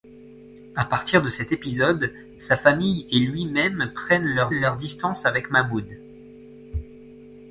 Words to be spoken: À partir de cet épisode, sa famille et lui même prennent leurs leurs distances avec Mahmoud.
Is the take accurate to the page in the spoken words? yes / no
yes